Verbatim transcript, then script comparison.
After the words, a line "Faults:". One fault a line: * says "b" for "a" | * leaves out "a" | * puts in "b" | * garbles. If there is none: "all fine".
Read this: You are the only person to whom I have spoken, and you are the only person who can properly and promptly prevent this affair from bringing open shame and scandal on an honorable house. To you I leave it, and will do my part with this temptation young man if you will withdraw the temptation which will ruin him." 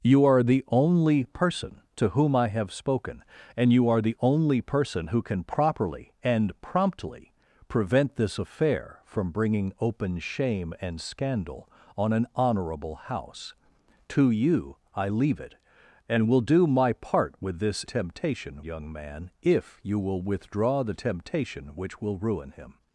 You are the only person to whom I have spoken, and you are the only person who can properly and promptly prevent this affair from bringing open shame and scandal on an honorable house. To you I leave it, and will do my part with this temptation young man if you will withdraw the temptation which will ruin him."
Faults:
all fine